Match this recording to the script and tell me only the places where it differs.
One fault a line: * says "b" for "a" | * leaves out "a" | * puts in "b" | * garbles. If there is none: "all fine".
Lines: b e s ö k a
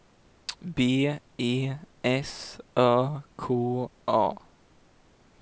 all fine